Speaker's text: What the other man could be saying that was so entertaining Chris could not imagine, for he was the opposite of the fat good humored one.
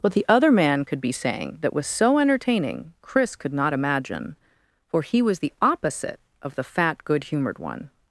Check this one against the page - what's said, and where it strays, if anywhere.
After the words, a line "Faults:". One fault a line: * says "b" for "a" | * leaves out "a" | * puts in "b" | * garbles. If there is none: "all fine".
What the other man could be saying that was so entertaining Chris could not imagine, for he was the opposite of the fat good humored one.
Faults:
all fine